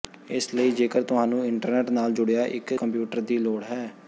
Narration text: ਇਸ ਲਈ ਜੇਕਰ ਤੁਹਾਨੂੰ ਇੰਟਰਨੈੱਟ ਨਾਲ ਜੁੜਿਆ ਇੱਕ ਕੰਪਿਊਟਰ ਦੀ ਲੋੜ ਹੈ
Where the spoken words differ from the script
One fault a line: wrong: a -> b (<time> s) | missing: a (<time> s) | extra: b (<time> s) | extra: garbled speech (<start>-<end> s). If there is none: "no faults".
no faults